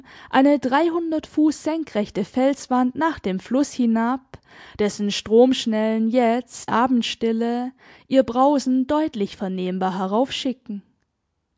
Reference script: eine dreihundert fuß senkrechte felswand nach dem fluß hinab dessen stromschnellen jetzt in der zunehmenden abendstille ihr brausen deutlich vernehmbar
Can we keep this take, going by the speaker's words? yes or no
no